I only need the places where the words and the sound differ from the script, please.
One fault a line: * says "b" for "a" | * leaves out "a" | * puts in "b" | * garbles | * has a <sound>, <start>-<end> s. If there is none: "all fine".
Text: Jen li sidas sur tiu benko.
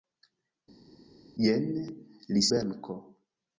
* leaves out "sidas sur tiu"